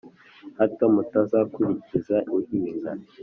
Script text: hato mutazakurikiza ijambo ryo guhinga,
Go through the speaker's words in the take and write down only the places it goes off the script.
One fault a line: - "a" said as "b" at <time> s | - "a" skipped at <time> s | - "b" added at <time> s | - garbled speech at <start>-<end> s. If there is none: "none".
- "ijambo ryo" skipped at 2.2 s